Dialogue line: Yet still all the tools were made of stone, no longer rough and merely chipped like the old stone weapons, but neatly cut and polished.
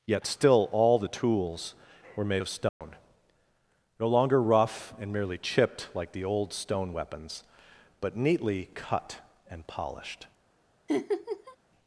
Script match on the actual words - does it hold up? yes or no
yes